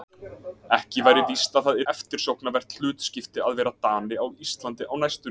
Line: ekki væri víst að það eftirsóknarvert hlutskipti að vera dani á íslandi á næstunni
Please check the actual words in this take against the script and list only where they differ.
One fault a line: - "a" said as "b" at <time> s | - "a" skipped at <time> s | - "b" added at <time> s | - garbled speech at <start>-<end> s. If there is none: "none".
none